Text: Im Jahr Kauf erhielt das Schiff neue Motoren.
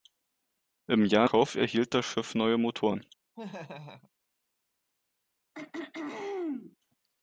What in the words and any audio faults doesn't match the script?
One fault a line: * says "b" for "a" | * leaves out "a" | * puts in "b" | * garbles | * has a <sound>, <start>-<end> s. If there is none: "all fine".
* has a laugh, 3.4-4.1 s
* has a throat clearing, 5.5-6.8 s